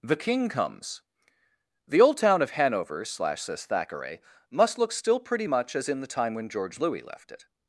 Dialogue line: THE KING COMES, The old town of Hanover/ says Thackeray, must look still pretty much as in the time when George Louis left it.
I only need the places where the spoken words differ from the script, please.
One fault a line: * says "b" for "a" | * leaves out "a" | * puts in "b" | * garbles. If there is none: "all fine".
* puts in "slash"